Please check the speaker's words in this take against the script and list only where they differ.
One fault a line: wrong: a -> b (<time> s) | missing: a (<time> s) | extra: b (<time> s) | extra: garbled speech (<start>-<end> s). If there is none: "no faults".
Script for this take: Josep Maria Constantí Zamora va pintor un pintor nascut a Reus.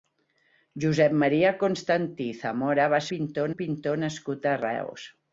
no faults